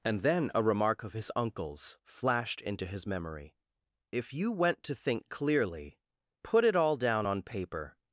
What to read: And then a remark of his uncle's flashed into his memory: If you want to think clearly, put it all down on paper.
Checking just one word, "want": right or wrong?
wrong